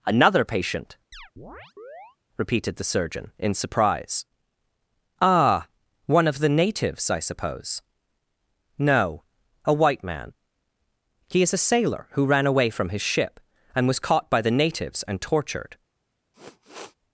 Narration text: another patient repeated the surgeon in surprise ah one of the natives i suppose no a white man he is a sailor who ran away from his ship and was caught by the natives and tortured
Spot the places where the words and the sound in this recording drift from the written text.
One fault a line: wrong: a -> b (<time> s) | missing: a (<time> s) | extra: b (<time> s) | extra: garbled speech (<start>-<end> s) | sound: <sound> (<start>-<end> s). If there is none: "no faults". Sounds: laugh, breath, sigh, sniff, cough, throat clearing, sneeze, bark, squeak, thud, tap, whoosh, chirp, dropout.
sound: chirp (1.1-2.2 s)
sound: sniff (16.3-17.0 s)